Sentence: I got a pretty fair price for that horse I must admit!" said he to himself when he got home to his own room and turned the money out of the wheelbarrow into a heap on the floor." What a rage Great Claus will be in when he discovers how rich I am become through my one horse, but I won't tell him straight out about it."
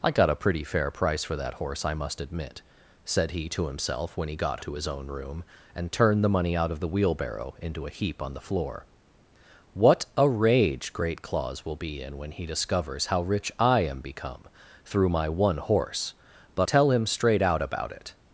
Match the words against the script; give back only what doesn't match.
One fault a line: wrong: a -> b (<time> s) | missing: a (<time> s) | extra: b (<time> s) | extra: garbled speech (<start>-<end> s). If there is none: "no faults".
missing: home (4.6 s)
missing: I won't (16.7 s)